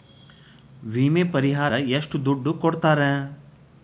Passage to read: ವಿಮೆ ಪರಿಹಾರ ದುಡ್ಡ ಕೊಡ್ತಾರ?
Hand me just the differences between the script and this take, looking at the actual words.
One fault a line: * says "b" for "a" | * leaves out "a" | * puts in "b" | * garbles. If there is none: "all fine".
* puts in "ಎಷ್ಟ"